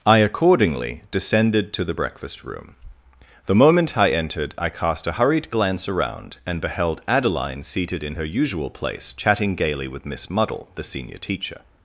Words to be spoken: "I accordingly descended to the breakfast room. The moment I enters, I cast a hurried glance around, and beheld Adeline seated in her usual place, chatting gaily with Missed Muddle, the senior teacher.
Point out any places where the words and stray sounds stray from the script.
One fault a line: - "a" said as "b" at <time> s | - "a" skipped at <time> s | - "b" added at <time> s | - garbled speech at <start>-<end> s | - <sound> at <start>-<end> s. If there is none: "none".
- "enters" said as "entered" at 4.1 s
- "Missed" said as "Miss" at 10.0 s